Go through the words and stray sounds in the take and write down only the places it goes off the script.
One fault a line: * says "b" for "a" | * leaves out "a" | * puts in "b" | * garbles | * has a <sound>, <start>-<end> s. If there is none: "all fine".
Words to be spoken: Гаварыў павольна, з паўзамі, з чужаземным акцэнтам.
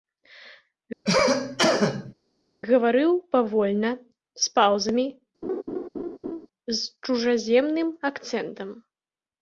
* has a cough, 1.1-2.1 s
* has a laugh, 5.4-6.5 s